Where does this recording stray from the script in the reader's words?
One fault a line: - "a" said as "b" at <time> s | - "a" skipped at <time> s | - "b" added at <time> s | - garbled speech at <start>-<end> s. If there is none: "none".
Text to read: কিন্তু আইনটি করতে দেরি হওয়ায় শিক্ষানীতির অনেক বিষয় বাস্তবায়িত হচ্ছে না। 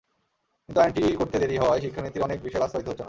none